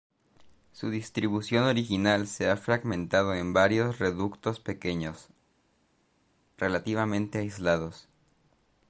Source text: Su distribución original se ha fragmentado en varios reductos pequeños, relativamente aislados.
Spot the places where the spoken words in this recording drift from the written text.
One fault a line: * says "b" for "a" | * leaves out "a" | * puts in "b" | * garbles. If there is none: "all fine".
all fine